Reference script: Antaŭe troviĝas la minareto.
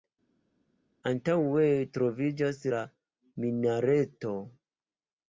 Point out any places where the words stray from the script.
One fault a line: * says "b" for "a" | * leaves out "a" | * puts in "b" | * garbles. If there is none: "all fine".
all fine